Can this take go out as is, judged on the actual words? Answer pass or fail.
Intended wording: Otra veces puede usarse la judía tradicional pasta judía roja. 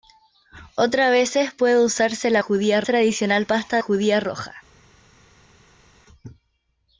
pass